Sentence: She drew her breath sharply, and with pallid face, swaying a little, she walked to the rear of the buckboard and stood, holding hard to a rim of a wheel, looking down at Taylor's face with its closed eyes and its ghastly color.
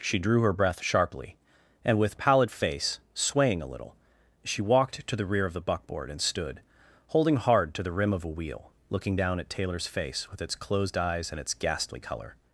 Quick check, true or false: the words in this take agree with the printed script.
false